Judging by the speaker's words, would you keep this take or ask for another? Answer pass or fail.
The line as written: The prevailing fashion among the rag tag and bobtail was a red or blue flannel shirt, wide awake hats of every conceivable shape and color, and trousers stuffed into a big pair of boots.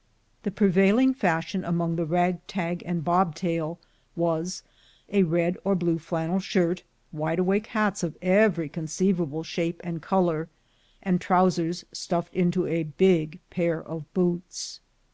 pass